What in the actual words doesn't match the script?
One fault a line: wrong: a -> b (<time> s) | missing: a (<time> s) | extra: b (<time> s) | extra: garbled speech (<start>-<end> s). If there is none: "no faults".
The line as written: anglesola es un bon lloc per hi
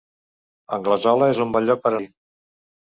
no faults